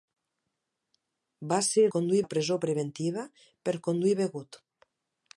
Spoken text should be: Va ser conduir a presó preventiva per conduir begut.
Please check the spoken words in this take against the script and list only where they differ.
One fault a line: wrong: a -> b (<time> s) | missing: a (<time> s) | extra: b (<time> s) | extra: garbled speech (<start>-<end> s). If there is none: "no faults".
no faults